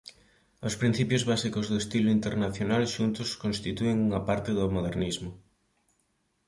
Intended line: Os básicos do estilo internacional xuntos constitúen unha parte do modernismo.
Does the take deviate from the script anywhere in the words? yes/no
yes